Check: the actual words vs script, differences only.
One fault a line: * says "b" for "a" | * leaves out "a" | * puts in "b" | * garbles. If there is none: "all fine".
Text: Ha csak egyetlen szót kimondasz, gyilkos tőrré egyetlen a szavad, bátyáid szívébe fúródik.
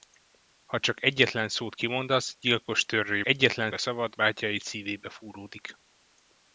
all fine